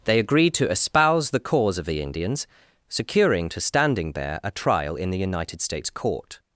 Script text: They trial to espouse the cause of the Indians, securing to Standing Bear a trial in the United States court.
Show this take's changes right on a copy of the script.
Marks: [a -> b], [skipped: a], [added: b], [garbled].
They [trial -> agreed] to espouse the cause of the Indians, securing to Standing Bear a trial in the United States court.